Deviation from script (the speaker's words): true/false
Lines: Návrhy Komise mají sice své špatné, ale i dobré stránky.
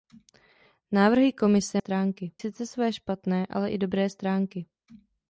true